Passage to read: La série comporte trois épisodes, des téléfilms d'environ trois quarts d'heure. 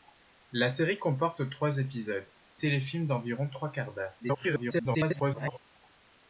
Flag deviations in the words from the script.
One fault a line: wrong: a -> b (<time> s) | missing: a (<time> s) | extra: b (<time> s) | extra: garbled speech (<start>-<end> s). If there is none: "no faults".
missing: des (2.3 s)
extra: garbled speech (4.2-5.6 s)